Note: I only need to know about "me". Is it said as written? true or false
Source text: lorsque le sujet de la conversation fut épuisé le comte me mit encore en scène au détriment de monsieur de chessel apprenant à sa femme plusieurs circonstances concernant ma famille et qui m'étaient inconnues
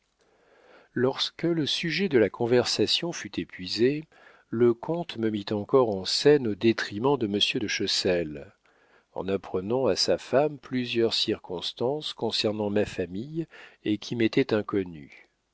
true